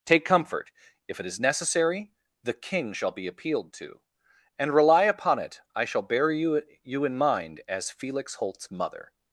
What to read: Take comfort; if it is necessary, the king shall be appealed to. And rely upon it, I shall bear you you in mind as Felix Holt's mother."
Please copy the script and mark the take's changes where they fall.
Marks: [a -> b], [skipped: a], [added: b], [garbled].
Take comfort; if it is necessary, the king shall be appealed to. And rely upon it, I shall bear you you in mind as Felix Holt's mother."